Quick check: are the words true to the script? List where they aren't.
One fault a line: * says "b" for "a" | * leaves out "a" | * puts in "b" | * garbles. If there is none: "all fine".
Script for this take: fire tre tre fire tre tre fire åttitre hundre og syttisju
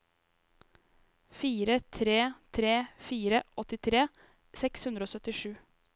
* says "åttitre seks" for "tre tre fire åttitre"